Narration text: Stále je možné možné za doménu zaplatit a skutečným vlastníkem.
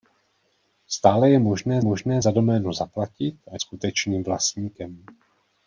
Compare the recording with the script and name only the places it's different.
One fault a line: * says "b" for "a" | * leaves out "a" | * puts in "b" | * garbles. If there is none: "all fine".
all fine